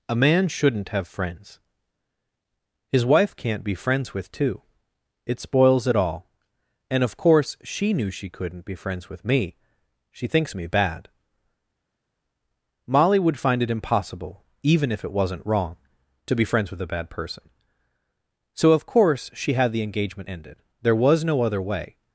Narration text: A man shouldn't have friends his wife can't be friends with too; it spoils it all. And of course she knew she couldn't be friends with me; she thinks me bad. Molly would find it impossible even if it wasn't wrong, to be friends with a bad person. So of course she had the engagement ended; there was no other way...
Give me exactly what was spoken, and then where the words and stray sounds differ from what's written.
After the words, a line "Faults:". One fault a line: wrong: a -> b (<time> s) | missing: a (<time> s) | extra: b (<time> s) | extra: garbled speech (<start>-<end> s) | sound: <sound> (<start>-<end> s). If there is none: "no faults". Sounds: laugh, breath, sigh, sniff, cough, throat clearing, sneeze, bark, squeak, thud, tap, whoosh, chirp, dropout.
A man shouldn't have friends his wife can't be friends with too; it spoils it all. And of course she knew she couldn't be friends with me; she thinks me bad. Molly would find it impossible even if it wasn't wrong, to be friends with a bad person. So of course she had the engagement ended; there was no other way...
Faults:
no faults